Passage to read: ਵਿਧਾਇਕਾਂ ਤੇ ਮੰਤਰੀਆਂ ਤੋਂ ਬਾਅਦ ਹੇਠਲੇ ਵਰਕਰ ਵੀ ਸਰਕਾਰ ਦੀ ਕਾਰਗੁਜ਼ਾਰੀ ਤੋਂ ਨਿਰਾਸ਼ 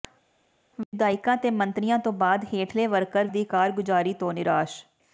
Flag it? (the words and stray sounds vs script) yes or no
yes